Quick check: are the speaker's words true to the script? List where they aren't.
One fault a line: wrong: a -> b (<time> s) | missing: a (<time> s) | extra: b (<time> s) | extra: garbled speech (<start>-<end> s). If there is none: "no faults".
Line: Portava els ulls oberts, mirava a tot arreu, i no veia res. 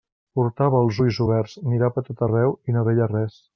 no faults